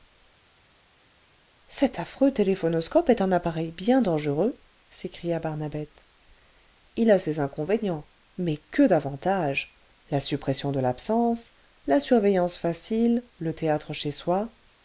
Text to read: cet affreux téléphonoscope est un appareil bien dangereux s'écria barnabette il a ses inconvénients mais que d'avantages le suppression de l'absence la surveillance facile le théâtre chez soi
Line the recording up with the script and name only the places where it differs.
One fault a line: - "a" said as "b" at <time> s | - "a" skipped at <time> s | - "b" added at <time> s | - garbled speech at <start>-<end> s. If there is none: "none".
- "le" said as "la" at 10.1 s